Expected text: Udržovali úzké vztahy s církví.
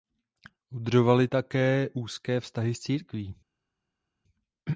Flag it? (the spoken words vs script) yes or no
yes